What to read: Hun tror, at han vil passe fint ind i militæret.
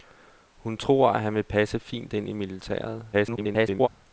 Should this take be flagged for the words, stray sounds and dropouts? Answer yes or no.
yes